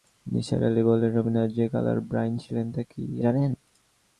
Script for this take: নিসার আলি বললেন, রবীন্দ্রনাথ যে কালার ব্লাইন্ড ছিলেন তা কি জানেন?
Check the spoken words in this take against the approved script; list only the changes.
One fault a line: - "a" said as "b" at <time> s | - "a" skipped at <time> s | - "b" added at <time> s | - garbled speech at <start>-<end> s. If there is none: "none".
none